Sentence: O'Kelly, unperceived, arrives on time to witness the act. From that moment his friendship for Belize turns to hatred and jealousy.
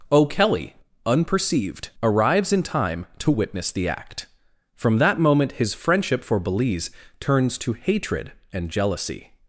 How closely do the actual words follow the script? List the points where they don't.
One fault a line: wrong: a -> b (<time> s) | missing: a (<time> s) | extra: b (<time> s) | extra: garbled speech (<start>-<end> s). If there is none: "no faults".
wrong: on -> in (2.5 s)